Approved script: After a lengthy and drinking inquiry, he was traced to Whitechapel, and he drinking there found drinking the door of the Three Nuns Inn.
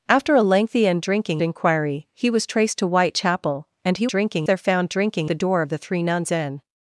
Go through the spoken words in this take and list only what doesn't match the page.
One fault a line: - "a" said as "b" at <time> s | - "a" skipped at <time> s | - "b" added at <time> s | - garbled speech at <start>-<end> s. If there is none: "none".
none